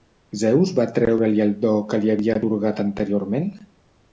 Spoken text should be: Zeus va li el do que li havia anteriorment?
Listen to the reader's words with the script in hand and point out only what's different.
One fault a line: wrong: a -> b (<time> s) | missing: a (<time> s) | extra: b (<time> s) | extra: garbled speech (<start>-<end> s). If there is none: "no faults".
extra: treure (0.9 s)
extra: atorgat (2.4 s)